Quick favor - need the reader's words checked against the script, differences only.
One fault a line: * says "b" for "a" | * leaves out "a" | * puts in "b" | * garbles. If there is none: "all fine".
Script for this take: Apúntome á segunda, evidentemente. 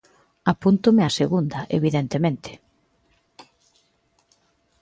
all fine